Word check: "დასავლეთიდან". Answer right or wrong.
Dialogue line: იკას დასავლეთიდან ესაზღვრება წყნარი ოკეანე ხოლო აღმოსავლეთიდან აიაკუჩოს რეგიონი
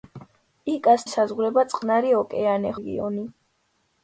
wrong